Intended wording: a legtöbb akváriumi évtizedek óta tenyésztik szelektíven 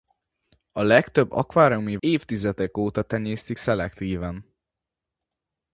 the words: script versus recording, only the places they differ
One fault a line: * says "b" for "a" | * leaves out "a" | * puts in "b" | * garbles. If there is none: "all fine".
all fine